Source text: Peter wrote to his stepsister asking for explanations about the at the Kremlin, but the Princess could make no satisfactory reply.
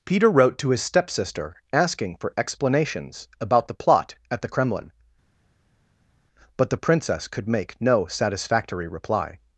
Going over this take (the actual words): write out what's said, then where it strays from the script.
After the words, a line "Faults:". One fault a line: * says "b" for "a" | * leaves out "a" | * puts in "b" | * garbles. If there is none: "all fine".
Peter wrote to his stepsister asking for explanations about the plot at the Kremlin, but the Princess could make no satisfactory reply.
Faults:
* puts in "plot"